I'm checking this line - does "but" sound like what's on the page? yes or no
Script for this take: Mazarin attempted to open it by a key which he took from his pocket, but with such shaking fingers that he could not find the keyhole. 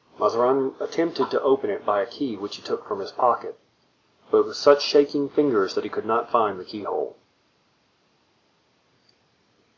yes